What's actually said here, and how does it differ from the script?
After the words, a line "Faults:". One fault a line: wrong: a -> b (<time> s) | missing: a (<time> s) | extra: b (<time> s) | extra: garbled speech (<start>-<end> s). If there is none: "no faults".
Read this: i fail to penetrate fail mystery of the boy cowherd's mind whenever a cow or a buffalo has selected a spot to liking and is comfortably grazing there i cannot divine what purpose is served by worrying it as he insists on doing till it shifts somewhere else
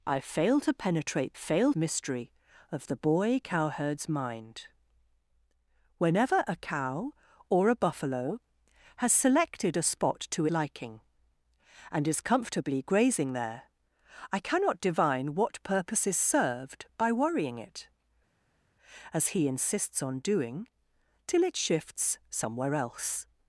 i fail to penetrate fail mystery of the boy cowherd's mind whenever a cow or a buffalo has selected a spot to liking and is comfortably grazing there i cannot divine what purpose is served by worrying it as he insists on doing till it shifts somewhere else
Faults:
no faults